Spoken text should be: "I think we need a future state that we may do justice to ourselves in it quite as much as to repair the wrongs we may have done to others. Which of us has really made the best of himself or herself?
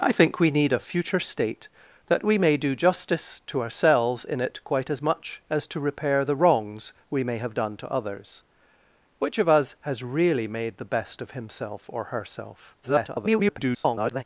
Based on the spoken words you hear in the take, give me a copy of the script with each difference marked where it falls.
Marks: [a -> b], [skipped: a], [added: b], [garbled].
"I think we need a future state that we may do justice to ourselves in it quite as much as to repair the wrongs we may have done to others. Which of us has really made the best of himself or herself? [garbled]